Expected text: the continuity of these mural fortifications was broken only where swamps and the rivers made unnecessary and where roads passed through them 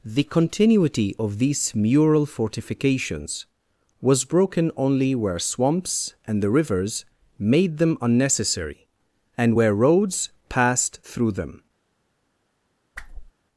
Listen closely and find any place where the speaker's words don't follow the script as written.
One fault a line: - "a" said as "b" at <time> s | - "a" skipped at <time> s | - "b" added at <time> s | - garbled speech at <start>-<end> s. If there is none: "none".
- "them" added at 7.8 s